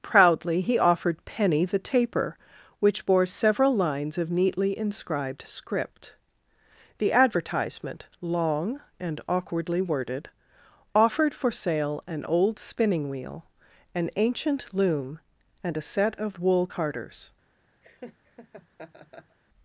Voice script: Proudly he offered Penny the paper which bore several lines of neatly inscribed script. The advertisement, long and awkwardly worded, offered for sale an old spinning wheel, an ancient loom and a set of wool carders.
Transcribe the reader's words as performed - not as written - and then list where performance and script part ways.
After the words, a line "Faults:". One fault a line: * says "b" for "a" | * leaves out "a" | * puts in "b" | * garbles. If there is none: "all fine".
Proudly he offered Penny the taper which bore several lines of neatly inscribed script. The advertisement, long and awkwardly worded, offered for sale an old spinning wheel, an ancient loom and a set of wool carders.
Faults:
* says "taper" for "paper"